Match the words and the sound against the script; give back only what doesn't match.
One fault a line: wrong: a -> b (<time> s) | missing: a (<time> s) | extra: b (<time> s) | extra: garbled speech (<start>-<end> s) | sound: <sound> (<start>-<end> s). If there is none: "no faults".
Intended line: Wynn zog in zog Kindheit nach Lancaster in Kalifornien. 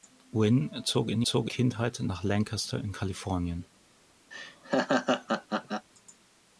sound: laugh (4.3-5.9 s)